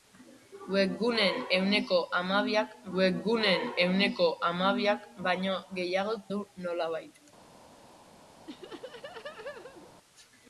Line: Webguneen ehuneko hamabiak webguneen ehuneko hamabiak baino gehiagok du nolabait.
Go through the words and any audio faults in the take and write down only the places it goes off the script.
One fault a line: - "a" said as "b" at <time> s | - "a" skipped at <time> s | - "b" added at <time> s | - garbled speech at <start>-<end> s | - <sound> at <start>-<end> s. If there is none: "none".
- laugh at 8.5-9.9 s